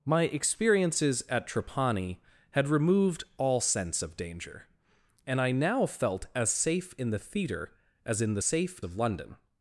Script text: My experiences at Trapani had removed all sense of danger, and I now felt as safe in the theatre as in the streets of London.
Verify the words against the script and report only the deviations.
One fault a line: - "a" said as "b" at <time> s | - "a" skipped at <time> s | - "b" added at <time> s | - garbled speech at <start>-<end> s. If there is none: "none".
- "streets" said as "safe" at 8.4 s